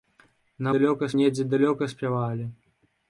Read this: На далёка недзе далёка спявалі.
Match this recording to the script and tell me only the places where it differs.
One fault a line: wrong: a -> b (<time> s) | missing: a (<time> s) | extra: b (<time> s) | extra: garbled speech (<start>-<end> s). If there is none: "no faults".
no faults